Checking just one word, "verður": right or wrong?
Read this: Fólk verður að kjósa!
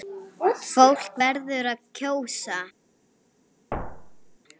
right